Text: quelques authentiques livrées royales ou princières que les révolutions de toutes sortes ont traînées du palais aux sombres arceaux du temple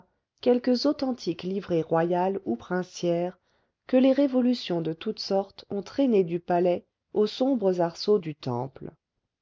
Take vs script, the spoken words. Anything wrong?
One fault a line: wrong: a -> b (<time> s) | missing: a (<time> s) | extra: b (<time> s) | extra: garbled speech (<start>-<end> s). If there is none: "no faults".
no faults